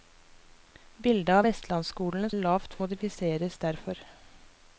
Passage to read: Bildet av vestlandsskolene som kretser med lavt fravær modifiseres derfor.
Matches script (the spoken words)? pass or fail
fail